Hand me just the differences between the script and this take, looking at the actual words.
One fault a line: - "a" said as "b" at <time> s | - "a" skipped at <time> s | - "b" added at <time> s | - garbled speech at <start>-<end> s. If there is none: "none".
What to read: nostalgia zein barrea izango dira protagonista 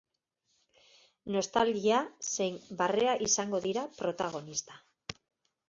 none